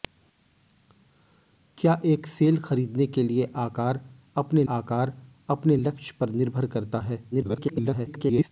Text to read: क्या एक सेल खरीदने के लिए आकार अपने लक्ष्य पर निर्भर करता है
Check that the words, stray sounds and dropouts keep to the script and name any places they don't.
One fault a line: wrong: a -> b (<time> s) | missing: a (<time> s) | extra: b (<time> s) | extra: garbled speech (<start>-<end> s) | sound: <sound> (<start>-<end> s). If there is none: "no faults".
extra: आकार अपने (4.7 s)
extra: garbled speech (7.3-8.5 s)